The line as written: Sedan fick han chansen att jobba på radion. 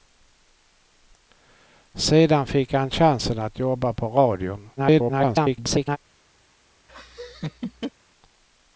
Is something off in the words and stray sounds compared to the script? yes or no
yes